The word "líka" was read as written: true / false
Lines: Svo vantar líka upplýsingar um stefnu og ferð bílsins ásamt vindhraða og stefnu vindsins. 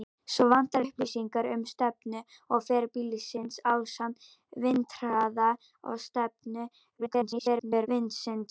false